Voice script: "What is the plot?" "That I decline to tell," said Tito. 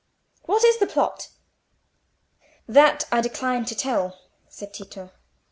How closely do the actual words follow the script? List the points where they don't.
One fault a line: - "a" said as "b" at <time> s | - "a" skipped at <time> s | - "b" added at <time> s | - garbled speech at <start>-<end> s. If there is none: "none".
none